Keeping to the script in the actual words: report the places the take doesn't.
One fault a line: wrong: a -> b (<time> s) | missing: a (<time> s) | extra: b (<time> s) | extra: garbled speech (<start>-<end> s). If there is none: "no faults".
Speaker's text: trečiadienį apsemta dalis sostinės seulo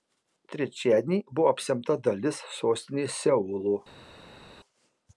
extra: buvo (1.4 s)